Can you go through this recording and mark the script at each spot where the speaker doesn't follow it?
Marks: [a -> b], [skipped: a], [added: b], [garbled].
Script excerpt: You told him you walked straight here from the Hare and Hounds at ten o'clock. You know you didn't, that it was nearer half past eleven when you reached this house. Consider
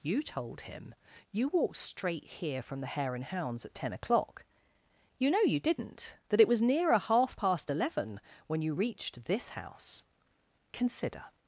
You told him you walked straight here from the Hare and Hounds at ten o'clock. You know you didn't, that it was nearer half past eleven when you reached this house. Consider